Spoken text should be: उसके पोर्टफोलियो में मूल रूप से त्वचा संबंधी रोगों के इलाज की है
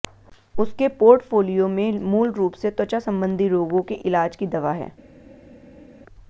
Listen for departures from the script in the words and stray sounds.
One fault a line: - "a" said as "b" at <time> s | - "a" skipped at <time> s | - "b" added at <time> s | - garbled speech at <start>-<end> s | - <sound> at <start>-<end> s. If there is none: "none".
- "दवा" added at 4.5 s